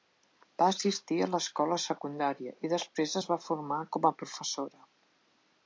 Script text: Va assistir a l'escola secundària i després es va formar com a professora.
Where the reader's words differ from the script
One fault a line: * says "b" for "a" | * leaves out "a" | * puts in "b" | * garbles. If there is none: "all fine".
all fine